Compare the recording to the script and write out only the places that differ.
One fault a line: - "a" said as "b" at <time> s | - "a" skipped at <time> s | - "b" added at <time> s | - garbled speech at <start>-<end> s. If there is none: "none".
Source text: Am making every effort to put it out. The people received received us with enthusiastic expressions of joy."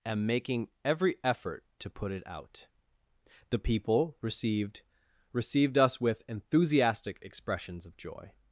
none